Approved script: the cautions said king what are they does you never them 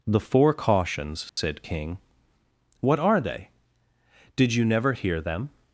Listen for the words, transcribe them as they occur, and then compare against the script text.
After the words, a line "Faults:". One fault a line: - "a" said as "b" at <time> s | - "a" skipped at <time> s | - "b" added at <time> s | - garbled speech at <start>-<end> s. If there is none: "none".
the four cautions said king what are they did you never hear them
Faults:
- "four" added at 0.2 s
- "does" said as "did" at 4.3 s
- "hear" added at 4.9 s